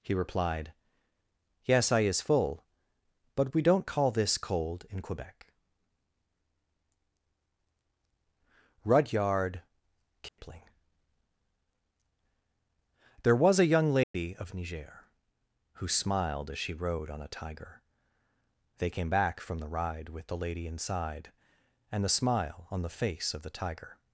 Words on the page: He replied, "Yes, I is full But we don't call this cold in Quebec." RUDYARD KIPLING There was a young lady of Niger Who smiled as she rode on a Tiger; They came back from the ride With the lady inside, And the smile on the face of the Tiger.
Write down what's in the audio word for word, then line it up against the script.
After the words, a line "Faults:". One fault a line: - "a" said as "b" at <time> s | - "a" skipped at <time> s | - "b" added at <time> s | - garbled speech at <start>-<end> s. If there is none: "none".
He replied, "Yes, I is full But we don't call this cold in Quebec." RUDYARD KIPLING There was a young lady of Niger Who smiled as she rode on a Tiger; They came back from the ride With the lady inside, And the smile on the face of the Tiger.
Faults:
none